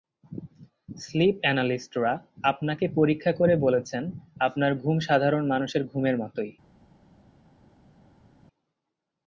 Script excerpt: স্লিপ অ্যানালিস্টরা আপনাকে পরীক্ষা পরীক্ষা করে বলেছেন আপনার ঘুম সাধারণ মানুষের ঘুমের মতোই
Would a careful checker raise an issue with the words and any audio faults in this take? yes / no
yes